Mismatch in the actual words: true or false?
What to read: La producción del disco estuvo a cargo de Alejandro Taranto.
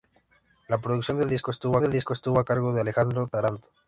true